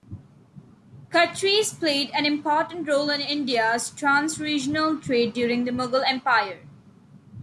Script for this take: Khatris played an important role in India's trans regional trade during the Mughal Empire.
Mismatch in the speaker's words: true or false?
false